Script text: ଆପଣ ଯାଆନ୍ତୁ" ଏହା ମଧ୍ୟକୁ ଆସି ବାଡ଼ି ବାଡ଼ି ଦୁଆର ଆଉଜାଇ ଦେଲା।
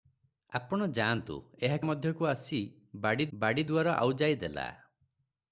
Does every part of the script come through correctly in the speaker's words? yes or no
yes